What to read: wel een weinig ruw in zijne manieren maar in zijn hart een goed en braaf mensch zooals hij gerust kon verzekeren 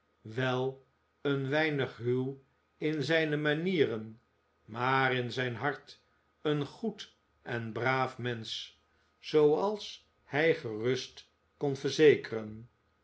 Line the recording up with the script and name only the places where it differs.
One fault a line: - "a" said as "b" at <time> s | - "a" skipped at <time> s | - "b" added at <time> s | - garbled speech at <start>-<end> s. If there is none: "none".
none